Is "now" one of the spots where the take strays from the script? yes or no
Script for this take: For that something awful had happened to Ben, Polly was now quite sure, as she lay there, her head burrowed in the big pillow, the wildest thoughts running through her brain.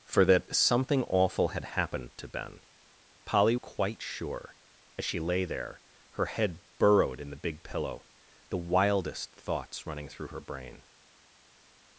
yes